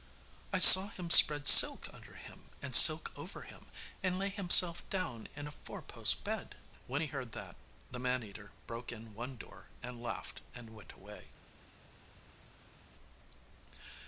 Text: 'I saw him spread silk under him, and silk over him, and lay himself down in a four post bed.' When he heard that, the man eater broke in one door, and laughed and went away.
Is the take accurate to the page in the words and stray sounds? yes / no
yes